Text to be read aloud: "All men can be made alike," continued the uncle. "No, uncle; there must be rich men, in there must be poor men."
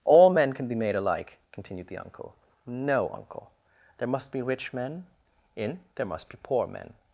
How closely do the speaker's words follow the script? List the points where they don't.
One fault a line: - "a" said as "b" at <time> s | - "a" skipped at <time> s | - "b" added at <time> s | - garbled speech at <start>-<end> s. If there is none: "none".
none